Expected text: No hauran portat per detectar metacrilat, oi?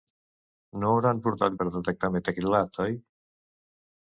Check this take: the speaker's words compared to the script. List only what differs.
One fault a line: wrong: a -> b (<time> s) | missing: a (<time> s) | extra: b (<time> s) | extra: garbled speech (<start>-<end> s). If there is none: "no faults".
no faults